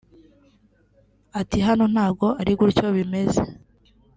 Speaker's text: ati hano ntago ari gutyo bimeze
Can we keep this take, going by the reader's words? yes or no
yes